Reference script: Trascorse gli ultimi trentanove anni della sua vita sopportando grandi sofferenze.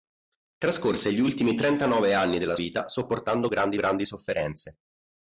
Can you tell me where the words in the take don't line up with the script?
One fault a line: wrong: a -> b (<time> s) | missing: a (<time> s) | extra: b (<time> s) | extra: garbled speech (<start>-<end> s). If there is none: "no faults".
missing: sua (2.5 s)
extra: grandi (3.7 s)